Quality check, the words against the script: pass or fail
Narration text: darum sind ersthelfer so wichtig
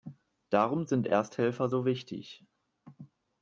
pass